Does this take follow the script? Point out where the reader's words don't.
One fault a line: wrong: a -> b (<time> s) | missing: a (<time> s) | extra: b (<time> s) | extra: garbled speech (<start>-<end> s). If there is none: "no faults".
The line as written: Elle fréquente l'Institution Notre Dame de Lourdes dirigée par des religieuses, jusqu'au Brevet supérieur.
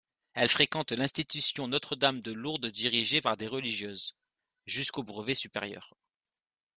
no faults